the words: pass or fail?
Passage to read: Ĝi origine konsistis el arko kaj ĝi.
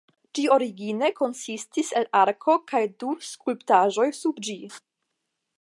fail